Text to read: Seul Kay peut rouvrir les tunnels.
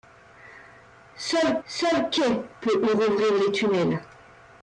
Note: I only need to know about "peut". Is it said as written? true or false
true